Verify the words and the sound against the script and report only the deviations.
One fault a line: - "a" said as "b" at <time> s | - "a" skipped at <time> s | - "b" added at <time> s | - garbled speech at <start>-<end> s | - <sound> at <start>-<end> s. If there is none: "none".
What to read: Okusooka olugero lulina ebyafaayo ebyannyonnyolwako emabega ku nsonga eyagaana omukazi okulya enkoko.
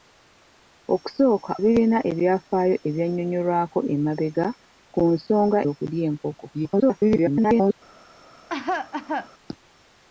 - "olugero" skipped at 1.5 s
- "eyagaana omukazi" skipped at 5.6 s
- garbled speech at 6.5-7.7 s
- cough at 8.5-9.3 s